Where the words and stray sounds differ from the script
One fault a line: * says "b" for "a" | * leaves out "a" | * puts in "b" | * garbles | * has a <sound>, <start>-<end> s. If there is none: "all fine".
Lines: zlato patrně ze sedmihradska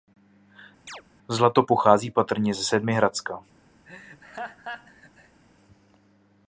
* has a chirp, 0.9-1.0 s
* puts in "pochází"
* has a laugh, 3.8-5.4 s